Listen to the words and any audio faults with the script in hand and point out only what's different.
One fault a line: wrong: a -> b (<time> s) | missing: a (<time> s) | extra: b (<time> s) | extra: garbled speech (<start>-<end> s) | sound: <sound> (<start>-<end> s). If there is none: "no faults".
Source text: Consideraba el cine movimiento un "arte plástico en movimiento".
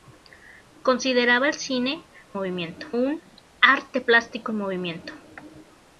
no faults